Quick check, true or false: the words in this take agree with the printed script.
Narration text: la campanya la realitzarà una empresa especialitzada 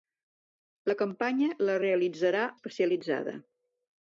false